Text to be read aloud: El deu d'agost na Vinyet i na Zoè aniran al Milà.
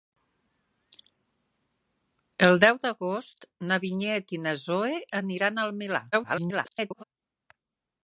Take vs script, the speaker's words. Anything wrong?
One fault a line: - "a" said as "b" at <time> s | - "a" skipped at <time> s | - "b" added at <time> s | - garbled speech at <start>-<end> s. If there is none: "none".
- garbled speech at 6.1-7.0 s